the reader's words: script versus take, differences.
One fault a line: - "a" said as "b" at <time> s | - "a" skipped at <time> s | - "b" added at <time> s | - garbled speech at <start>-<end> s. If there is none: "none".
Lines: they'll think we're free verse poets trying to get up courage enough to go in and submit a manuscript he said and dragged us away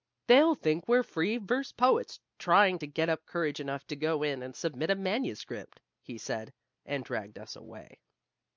none